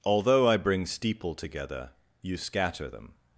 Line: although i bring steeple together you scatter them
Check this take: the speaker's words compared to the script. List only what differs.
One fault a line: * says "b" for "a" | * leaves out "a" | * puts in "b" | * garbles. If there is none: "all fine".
all fine